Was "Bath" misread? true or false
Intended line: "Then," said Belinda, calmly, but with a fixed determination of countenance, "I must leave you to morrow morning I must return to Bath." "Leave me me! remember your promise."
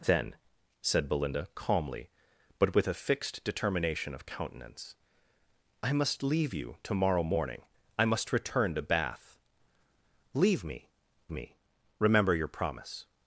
false